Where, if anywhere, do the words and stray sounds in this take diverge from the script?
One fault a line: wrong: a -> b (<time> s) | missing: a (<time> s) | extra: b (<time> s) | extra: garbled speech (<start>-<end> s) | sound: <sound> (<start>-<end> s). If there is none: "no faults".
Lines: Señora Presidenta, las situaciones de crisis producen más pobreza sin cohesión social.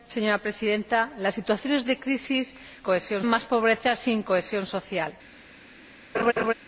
wrong: producen -> cohesión (2.8 s)
sound: laugh (6.1-6.5 s)